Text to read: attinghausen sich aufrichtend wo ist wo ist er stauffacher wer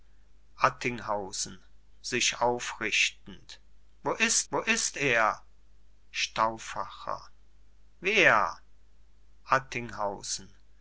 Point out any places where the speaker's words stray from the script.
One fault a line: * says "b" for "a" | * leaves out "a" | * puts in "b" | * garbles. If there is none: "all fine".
all fine